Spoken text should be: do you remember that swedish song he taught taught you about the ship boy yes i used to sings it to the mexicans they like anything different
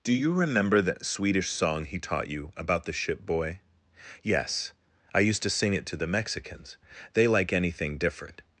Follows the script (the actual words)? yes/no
no